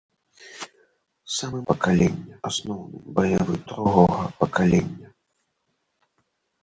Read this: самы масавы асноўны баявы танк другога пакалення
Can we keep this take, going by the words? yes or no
no